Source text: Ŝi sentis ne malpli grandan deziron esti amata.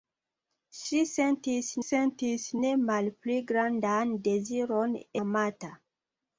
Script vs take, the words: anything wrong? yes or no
yes